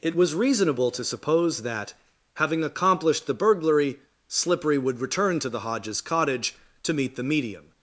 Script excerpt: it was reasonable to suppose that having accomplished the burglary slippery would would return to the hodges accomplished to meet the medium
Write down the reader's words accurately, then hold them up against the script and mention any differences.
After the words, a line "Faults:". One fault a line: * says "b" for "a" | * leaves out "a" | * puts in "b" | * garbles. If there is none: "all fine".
it was reasonable to suppose that having accomplished the burglary slippery would return to the hodges cottage to meet the medium
Faults:
* leaves out "would"
* says "cottage" for "accomplished"